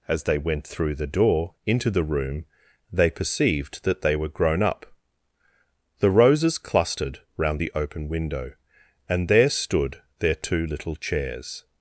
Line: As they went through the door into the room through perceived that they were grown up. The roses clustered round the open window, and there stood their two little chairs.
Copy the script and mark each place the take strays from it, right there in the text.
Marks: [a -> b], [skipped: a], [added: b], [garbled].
As they went through the door into the room [through -> they] perceived that they were grown up. The roses clustered round the open window, and there stood their two little chairs.